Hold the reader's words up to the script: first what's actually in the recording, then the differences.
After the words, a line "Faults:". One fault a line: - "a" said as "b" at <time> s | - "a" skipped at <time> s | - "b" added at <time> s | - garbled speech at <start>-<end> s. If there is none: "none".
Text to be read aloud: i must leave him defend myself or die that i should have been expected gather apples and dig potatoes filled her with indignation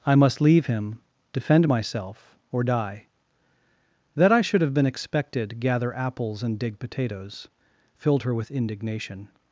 i must leave him defend myself or die that i should have been expected gather apples and dig potatoes filled her with indignation
Faults:
none